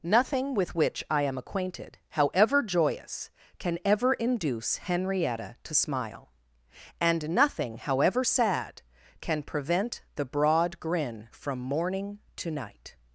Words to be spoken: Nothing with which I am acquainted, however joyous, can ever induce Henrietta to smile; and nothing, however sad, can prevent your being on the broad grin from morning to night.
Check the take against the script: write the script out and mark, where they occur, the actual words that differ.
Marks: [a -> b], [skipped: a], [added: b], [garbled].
Nothing with which I am acquainted, however joyous, can ever induce Henrietta to smile; and nothing, however sad, can prevent [skipped: your being on] the broad grin from morning to night.